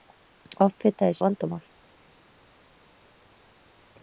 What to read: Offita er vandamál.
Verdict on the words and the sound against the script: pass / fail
pass